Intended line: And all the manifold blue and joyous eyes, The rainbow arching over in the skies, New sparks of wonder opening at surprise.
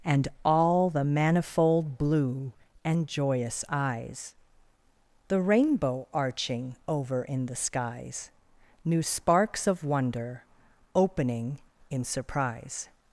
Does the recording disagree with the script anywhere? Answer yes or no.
yes